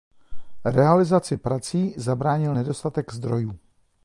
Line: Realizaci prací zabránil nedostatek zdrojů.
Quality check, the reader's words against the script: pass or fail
pass